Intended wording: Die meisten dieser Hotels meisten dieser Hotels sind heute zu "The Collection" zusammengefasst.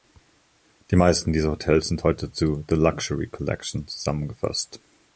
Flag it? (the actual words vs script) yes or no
yes